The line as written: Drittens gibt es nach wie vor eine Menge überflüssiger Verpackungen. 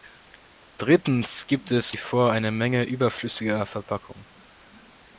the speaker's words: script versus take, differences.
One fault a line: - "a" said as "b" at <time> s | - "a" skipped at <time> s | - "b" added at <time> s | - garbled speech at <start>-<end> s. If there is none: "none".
- "nach" skipped at 1.9 s